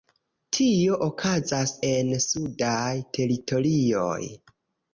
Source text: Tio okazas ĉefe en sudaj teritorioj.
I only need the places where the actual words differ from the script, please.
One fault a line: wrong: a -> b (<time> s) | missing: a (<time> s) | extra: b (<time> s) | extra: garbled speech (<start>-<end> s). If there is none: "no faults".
missing: ĉefe (1.8 s)